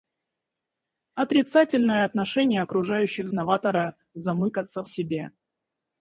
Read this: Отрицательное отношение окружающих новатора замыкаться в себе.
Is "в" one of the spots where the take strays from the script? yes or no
no